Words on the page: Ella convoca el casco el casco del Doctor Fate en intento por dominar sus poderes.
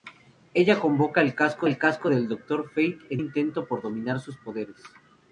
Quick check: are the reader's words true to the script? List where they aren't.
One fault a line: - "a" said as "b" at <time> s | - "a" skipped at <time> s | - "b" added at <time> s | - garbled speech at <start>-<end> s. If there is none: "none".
none